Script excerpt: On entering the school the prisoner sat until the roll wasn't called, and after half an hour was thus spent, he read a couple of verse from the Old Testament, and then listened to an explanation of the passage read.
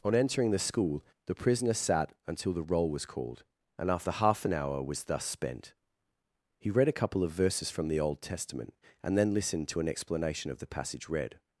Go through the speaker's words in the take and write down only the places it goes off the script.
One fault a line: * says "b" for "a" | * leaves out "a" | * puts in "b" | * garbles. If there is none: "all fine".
* says "was" for "wasn't"
* says "verses" for "verse"